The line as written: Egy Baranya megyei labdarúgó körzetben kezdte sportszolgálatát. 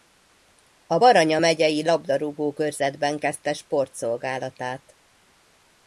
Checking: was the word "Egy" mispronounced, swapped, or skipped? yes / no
yes